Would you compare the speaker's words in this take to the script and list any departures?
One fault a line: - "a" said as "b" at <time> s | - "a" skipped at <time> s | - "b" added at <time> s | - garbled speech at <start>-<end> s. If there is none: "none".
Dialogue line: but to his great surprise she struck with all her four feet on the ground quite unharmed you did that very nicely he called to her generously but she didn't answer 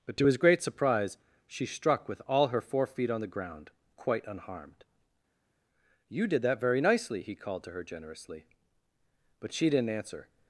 none